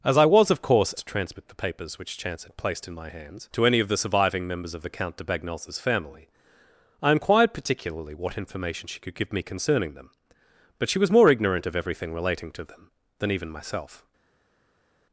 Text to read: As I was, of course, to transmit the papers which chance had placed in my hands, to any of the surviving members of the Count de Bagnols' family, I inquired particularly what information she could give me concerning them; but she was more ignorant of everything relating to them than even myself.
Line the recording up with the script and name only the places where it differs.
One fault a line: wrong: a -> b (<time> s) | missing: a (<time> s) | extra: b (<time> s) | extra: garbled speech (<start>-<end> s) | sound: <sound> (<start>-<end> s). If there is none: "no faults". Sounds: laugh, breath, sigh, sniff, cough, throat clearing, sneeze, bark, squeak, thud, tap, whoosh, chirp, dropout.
no faults